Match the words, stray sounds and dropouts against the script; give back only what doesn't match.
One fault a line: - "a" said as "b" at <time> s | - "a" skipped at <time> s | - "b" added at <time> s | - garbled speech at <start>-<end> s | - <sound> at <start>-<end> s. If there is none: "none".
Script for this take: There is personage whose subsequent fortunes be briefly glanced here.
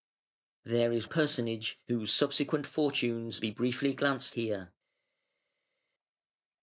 none